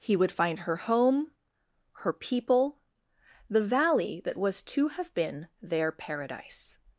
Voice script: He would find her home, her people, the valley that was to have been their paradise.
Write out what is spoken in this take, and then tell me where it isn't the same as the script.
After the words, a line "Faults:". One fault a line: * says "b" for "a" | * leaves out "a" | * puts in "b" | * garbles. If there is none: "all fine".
He would find her home, her people, the valley that was to have been their paradise.
Faults:
all fine